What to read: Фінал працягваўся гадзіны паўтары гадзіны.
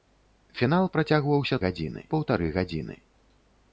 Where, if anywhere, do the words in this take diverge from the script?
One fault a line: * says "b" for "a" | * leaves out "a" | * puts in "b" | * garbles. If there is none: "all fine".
all fine